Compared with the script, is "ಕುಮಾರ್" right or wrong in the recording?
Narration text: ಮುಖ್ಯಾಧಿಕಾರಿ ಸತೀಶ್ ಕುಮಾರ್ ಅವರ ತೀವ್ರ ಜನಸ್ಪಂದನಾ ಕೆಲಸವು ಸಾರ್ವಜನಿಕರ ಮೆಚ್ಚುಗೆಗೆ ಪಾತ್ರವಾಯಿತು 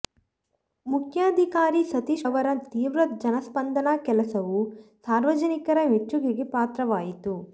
wrong